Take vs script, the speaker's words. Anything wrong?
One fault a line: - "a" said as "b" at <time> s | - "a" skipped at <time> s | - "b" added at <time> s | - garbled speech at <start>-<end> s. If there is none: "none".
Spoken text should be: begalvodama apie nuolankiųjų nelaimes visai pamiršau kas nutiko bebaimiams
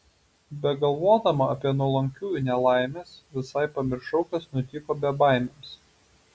none